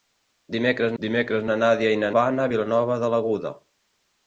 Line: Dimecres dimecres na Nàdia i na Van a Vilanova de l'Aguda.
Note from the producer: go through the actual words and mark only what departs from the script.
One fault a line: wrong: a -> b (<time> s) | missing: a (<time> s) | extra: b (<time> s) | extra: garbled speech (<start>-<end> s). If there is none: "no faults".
no faults